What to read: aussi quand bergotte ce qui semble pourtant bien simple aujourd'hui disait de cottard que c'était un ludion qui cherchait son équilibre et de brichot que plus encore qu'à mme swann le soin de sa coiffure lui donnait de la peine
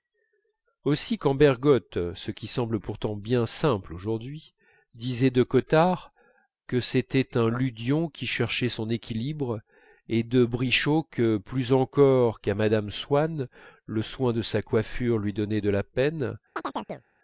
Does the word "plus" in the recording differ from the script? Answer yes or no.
no